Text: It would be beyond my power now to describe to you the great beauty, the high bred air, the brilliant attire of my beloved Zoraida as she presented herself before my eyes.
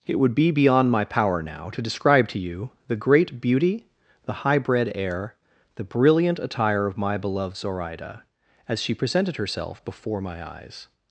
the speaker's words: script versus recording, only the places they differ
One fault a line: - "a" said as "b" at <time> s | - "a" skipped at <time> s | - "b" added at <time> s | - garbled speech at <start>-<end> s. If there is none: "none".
none